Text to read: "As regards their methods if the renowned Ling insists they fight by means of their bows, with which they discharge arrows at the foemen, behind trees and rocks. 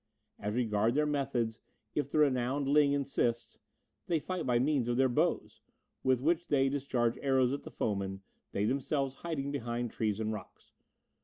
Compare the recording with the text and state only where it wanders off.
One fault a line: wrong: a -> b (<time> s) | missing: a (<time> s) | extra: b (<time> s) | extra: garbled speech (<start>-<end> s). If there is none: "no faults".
extra: they themselves hiding (8.5 s)